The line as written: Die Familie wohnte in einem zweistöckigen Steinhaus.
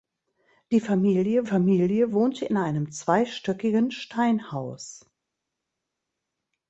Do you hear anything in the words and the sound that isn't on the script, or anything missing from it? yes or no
yes